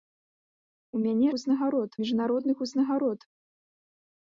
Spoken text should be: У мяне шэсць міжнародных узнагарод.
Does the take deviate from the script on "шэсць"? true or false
true